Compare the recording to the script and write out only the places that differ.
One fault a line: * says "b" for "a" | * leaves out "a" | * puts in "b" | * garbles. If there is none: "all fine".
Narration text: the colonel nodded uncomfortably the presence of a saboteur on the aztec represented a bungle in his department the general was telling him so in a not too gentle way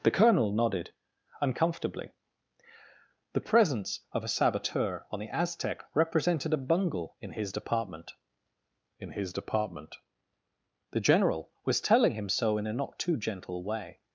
* puts in "in his department"